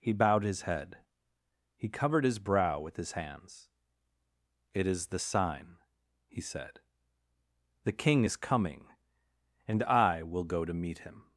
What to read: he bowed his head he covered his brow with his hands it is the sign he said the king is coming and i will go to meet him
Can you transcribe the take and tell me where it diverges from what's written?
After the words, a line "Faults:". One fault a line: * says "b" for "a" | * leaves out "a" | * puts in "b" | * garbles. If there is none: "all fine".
he bowed his head he covered his brow with his hands it is the sign he said the king is coming and i will go to meet him
Faults:
all fine